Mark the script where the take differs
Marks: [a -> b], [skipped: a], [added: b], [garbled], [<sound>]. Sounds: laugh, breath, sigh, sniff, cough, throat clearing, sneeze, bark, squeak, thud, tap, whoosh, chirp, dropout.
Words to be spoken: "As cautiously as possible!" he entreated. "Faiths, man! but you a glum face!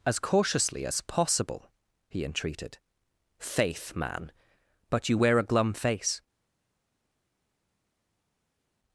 "As cautiously as possible!" he entreated. ["Faiths, -> Faith] man! but you [added: wear] a glum face!